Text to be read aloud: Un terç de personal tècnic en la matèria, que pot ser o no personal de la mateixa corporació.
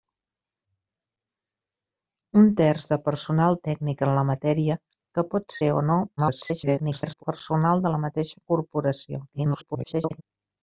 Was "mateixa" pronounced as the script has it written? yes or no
yes